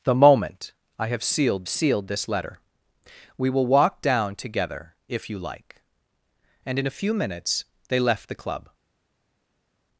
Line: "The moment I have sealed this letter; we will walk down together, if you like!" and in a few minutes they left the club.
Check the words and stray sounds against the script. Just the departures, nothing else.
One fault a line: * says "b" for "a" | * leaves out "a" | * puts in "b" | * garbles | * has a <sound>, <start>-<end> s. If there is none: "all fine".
* puts in "sealed"